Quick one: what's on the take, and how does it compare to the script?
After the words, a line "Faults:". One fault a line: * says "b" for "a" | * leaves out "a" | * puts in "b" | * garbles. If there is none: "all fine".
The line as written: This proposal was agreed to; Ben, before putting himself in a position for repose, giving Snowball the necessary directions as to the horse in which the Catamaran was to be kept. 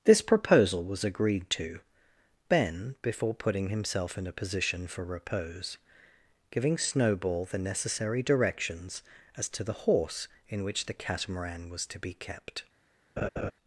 This proposal was agreed to; Ben, before putting himself in a position for repose, giving Snowball the necessary directions as to the horse in which the Catamaran was to be kept.
Faults:
all fine